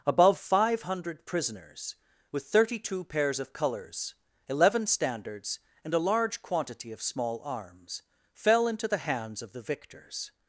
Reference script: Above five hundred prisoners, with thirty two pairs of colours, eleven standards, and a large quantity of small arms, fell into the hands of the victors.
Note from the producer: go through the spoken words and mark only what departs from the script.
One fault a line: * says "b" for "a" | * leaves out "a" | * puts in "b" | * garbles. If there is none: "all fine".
all fine